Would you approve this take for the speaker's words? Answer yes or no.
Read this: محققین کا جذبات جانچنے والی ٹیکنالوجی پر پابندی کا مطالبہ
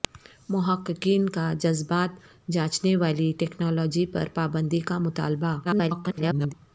no